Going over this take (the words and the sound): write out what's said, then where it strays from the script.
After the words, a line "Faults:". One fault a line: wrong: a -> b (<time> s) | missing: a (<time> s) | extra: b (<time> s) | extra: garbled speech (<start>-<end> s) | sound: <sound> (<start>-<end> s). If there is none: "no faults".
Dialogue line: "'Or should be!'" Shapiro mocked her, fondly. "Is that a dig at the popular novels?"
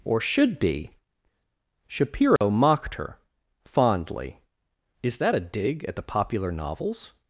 "'Or should be!'" Shapiro mocked her, fondly. "Is that a dig at the popular novels?"
Faults:
sound: dropout (2.4-2.4 s)